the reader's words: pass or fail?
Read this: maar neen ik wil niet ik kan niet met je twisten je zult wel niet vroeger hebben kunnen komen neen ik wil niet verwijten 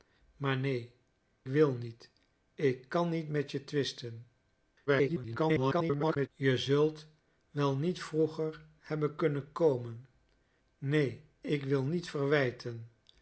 fail